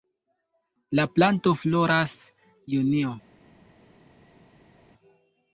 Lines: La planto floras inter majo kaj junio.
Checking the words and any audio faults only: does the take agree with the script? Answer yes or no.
no